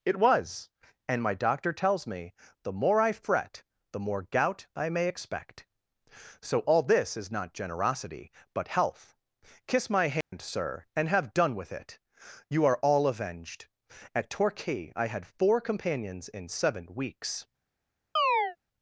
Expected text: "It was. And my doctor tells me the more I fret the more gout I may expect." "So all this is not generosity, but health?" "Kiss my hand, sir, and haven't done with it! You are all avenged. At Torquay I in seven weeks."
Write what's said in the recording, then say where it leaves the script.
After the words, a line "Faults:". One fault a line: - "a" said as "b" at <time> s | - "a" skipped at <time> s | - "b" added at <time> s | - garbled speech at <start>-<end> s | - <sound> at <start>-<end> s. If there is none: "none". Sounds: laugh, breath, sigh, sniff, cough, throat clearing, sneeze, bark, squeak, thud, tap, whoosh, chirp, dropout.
"It was. And my doctor tells me the more I fret the more gout I may expect." "So all this is not generosity, but health?" "Kiss my hand, sir, and have done with it! You are all avenged. At Torquay I had four companions in seven weeks."
Faults:
- dropout at 10.2-10.3 s
- "haven't" said as "have" at 11.1 s
- "had four companions" added at 15.1 s
- chirp at 18.2-18.6 s